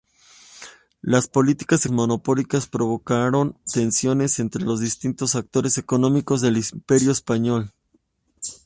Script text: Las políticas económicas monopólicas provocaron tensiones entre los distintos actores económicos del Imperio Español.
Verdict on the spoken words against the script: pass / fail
fail